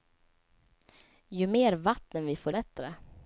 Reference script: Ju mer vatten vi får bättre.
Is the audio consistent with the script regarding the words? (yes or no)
yes